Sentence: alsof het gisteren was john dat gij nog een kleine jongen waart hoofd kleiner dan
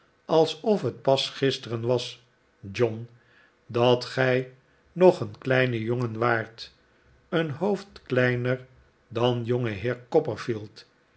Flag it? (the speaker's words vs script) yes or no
yes